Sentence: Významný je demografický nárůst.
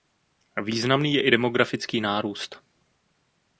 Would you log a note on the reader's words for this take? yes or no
yes